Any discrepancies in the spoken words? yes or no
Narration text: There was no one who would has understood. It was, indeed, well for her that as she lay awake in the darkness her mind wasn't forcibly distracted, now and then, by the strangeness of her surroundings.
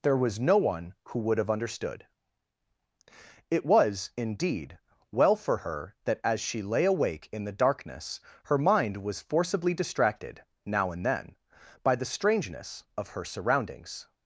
yes